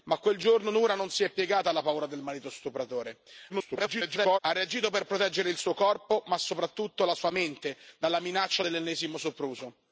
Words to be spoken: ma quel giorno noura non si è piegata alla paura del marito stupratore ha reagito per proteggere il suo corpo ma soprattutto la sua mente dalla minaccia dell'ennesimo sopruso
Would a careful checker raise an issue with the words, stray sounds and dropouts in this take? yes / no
yes